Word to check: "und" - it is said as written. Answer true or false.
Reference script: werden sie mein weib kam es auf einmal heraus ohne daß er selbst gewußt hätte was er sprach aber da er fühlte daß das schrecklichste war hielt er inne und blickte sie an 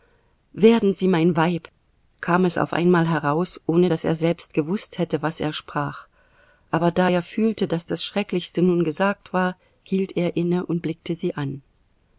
true